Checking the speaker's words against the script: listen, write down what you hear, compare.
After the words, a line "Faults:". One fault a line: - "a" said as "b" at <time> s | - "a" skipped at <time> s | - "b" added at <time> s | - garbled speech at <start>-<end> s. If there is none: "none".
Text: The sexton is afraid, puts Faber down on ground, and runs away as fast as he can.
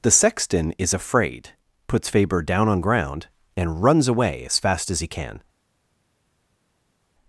The sexton is afraid, puts Faber down on ground, and runs away as fast as he can.
Faults:
none